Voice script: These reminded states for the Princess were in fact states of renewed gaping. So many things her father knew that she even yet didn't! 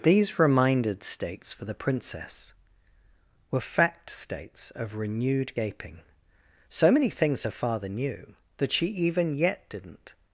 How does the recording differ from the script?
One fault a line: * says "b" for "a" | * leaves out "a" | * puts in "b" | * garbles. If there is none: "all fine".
* leaves out "in"